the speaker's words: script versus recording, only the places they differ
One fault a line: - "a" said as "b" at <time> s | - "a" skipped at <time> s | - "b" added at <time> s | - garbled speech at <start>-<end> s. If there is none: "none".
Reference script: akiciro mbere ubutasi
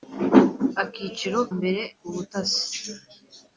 none